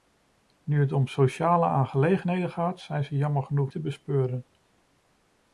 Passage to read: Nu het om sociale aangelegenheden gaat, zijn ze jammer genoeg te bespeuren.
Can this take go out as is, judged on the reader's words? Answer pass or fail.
pass